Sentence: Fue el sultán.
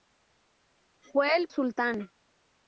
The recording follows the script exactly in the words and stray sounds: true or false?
true